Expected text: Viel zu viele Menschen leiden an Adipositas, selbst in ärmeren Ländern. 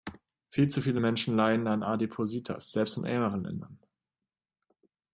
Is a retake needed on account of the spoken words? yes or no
no